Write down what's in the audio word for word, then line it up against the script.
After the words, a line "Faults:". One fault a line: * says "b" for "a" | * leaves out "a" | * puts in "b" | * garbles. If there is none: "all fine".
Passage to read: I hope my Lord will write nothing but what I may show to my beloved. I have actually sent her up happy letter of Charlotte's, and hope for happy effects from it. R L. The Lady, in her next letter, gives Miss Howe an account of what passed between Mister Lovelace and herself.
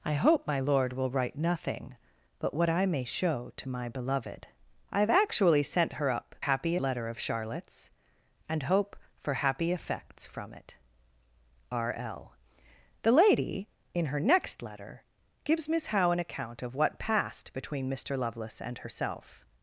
I hope my Lord will write nothing but what I may show to my beloved. I have actually sent her up happy letter of Charlotte's, and hope for happy effects from it. R L. The Lady, in her next letter, gives Miss Howe an account of what passed between Mister Lovelace and herself.
Faults:
all fine